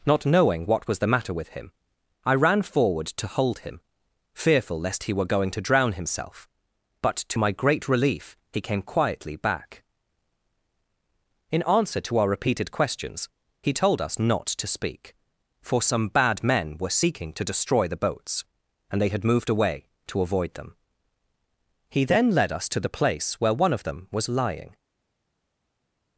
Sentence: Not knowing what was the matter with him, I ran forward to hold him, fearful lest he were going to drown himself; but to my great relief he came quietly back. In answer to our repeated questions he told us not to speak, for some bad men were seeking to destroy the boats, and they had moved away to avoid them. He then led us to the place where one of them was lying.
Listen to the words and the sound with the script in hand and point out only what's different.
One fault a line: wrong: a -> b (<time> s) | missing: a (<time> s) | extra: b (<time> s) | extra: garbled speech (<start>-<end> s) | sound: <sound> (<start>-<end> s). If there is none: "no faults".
no faults